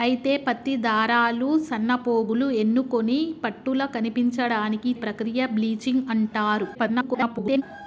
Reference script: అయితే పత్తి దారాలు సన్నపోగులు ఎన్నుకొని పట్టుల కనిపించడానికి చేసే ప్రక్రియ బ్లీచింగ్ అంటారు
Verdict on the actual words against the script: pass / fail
fail